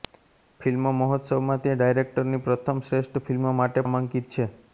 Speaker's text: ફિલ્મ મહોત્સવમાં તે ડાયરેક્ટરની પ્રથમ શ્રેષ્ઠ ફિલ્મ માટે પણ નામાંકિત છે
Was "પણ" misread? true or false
true